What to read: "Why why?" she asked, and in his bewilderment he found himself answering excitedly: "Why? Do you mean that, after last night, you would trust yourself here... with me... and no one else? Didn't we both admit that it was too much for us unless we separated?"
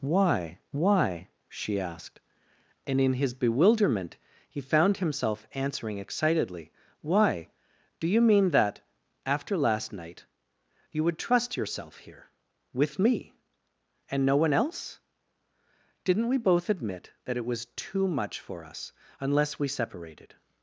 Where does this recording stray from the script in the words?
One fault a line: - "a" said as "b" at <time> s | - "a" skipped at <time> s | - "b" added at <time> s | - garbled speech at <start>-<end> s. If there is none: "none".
none